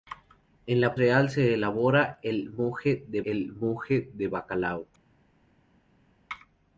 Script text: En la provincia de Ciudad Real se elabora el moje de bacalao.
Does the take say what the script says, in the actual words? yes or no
no